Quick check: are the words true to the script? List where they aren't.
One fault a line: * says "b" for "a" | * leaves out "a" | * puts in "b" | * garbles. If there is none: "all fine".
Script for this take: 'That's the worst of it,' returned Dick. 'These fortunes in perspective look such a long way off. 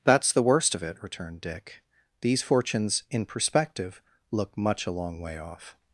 * says "much" for "such"